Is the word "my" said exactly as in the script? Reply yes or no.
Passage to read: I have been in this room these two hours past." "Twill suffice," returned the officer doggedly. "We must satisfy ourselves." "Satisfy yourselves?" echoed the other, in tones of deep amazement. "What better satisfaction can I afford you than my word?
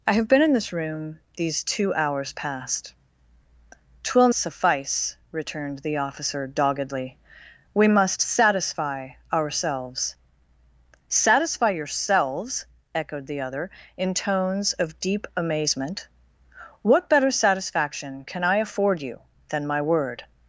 yes